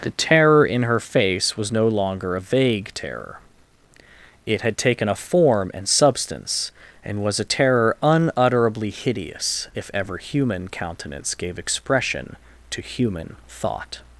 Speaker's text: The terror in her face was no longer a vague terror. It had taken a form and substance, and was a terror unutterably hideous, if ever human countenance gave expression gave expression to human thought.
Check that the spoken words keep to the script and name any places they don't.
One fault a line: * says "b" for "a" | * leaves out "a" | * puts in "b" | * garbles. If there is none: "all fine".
* leaves out "gave expression"